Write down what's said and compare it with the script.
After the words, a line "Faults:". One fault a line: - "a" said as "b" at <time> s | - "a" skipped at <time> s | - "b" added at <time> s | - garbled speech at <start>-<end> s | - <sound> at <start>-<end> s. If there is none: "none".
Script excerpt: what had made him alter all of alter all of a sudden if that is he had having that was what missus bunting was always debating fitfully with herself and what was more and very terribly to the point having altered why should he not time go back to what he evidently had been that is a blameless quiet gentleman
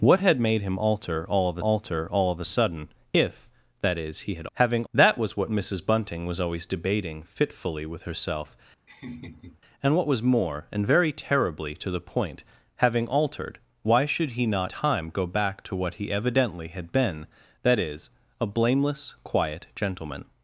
what had made him alter all of alter all of a sudden if that is he had having that was what missus bunting was always debating fitfully with herself and what was more and very terribly to the point having altered why should he not time go back to what he evidently had been that is a blameless quiet gentleman
Faults:
- laugh at 8.9-9.6 s